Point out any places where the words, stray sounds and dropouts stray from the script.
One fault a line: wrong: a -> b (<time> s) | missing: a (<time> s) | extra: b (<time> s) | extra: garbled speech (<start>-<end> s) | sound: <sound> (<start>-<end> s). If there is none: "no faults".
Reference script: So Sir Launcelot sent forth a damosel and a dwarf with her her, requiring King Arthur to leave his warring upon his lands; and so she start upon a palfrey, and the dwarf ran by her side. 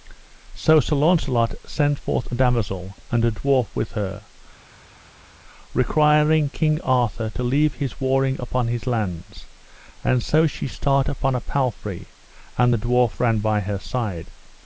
missing: her (4.2 s)